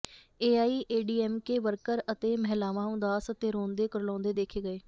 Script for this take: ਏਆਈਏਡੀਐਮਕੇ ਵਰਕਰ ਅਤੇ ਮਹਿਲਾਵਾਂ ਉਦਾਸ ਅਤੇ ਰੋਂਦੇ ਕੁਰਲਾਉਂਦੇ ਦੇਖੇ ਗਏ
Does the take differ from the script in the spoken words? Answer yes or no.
no